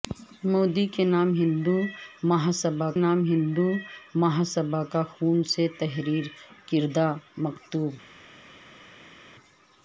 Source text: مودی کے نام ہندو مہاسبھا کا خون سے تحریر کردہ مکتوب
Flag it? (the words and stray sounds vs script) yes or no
yes